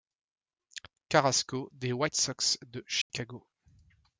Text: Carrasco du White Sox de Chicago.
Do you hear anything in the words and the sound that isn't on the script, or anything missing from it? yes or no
yes